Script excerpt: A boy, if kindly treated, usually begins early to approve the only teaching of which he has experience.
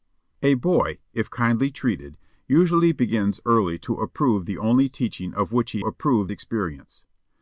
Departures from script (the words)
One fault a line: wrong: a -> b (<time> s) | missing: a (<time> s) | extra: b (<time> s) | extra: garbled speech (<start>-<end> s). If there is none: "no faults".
wrong: has -> approve (5.8 s)